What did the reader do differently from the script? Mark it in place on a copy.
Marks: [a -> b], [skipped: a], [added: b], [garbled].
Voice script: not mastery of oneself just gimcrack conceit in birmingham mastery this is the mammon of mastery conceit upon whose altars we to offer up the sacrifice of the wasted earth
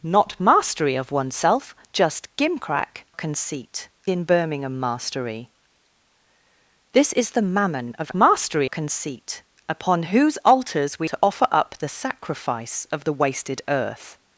not mastery of oneself just gimcrack conceit in birmingham mastery this is the mammon of mastery conceit upon whose altars we to offer up the sacrifice of the wasted earth